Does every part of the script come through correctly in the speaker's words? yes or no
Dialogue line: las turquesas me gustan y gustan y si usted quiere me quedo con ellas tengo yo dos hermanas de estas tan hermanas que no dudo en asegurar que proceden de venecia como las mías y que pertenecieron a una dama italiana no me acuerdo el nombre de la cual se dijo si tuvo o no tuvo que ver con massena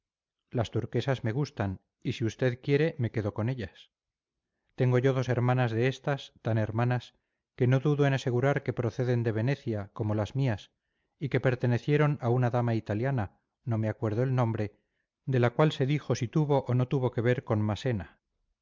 no